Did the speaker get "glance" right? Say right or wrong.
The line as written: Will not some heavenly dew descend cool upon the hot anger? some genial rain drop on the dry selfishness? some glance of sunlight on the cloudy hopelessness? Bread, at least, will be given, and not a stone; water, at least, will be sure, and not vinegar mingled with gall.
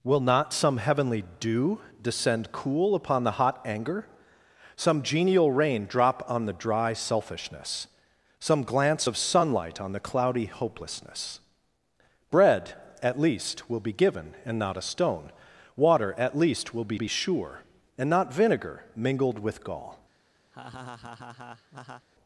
right